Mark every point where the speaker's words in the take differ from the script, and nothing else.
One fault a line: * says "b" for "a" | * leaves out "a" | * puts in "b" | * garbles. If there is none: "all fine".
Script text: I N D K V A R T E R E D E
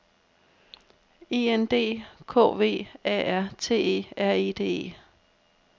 all fine